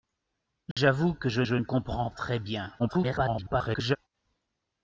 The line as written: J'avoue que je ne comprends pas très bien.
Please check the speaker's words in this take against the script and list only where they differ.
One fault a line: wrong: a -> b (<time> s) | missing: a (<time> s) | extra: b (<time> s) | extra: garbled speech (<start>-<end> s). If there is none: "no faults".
extra: je (1.4 s)
missing: pas (2.1 s)
extra: garbled speech (2.8-4.0 s)